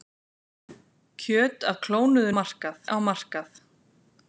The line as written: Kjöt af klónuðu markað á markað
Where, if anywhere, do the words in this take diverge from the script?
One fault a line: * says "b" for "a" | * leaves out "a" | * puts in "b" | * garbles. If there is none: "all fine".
all fine